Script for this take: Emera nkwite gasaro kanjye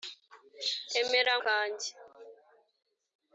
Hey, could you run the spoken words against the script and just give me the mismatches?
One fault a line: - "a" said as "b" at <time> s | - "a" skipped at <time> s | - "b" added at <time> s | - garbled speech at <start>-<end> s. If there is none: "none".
- "nkwite gasaro" skipped at 1.3 s